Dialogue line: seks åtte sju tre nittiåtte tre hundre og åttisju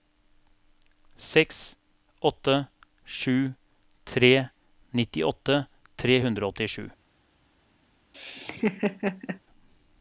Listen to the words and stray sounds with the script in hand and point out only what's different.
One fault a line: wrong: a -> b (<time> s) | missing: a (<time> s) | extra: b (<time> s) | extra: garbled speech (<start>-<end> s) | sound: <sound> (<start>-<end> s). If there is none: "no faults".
sound: laugh (8.1-9.4 s)